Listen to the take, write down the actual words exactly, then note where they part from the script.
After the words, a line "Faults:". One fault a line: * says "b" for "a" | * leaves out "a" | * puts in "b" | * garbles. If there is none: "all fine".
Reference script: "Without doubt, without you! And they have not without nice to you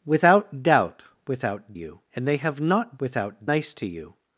"Without doubt, without you! And they have not without nice to you
Faults:
all fine